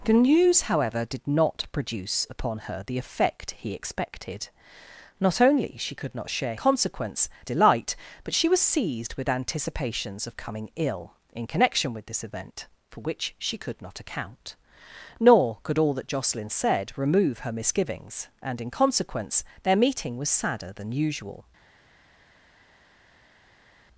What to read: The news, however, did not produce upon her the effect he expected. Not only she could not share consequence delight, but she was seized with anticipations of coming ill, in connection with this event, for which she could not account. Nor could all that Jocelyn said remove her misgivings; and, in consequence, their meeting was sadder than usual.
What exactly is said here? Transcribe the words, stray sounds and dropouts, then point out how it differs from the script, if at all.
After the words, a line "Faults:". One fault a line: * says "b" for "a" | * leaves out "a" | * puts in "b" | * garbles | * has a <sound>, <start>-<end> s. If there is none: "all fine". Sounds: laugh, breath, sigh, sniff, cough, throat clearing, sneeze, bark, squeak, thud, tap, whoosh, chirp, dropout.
The news, however, did not produce upon her the effect he expected. Not only she could not share consequence delight, but she was seized with anticipations of coming ill, in connection with this event, for which she could not account. Nor could all that Jocelyn said remove her misgivings; and, in consequence, their meeting was sadder than usual.
Faults:
all fine